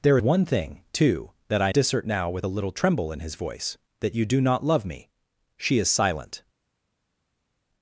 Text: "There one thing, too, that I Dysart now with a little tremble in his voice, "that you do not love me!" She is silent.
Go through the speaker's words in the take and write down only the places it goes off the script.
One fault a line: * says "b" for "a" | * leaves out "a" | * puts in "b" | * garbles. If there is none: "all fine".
all fine